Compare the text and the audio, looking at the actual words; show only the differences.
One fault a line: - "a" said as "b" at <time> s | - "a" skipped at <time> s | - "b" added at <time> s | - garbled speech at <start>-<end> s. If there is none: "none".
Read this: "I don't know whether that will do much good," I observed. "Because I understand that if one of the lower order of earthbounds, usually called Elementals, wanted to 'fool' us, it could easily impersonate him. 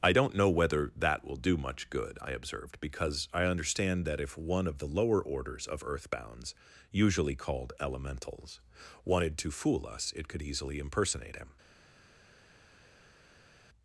- "order" said as "orders" at 5.2 s